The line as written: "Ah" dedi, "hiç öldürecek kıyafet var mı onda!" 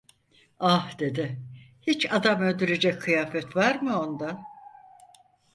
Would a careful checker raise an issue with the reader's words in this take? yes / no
yes